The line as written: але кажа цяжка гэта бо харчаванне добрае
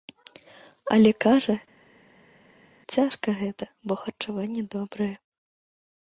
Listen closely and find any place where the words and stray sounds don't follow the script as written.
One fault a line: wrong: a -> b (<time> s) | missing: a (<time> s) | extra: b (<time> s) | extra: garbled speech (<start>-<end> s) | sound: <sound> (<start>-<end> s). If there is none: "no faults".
no faults